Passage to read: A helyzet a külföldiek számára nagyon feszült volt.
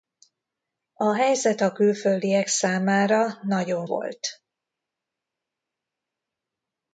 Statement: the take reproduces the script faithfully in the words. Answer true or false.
false